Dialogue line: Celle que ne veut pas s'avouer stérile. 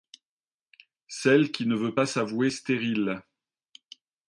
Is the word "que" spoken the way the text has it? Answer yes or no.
no